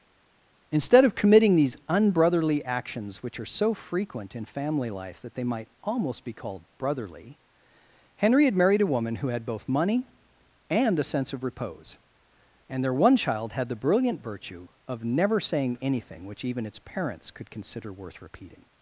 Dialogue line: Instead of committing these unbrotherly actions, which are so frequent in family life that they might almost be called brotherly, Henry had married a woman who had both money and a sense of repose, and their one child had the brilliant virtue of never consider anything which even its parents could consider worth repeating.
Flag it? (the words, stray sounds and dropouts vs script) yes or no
yes